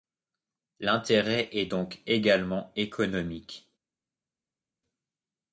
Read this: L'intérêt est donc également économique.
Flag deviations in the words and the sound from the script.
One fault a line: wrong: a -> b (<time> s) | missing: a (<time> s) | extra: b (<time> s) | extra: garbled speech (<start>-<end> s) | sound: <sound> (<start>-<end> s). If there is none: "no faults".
no faults